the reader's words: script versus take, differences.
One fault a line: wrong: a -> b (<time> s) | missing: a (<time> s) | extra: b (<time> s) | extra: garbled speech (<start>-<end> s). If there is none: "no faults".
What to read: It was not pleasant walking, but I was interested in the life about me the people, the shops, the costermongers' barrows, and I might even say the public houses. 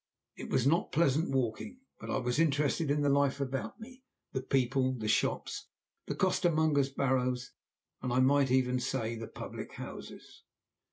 no faults